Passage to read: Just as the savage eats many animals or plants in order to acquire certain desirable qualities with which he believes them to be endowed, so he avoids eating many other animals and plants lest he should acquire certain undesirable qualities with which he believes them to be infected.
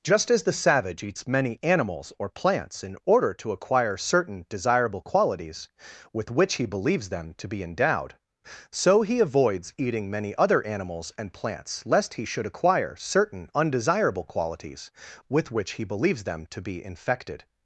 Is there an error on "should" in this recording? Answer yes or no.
no